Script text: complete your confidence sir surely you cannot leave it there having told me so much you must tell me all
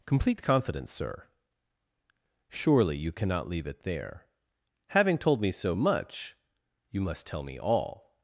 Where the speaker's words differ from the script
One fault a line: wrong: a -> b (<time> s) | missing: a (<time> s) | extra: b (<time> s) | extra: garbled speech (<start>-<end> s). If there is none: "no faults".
missing: your (0.4 s)